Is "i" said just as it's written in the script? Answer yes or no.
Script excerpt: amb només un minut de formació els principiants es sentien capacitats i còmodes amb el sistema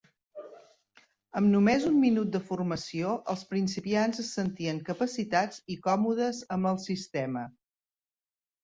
yes